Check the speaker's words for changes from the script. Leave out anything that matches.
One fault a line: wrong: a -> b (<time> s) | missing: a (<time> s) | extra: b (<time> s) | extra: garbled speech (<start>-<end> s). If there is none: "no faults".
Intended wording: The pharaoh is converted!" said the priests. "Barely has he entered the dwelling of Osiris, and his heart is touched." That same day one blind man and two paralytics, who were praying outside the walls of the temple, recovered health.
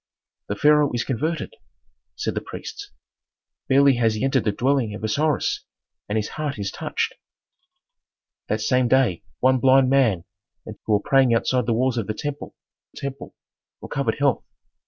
missing: two paralytics (10.8 s)
extra: temple (12.9 s)